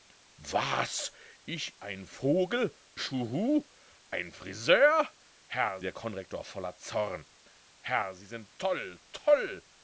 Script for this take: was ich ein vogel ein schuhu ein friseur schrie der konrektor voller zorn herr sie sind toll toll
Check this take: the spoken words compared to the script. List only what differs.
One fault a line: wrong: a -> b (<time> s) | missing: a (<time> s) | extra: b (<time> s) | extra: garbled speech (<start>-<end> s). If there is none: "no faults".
missing: ein (2.8 s)
wrong: schrie -> herr (5.5 s)